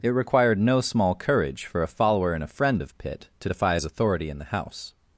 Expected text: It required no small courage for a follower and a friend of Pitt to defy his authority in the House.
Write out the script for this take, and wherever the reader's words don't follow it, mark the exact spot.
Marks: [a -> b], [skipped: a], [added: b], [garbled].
It required no small courage for a follower and a friend of Pitt to defy his authority in the House.